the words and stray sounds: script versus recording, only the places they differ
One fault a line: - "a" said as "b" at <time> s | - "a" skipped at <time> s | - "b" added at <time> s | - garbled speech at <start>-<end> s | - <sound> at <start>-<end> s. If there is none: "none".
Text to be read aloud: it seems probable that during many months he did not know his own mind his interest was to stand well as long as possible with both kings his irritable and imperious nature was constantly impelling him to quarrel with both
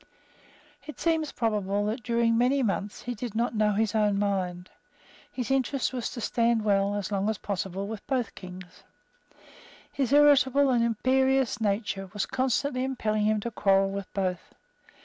none